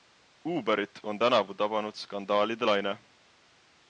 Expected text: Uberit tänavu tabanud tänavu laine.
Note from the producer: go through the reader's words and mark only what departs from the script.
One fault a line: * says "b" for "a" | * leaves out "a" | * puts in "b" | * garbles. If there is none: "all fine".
* puts in "on"
* says "skandaalide" for "tänavu"